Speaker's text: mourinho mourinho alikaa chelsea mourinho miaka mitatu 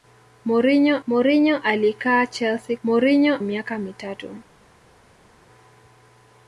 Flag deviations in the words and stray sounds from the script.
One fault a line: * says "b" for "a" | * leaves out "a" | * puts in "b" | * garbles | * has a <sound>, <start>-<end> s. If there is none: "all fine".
all fine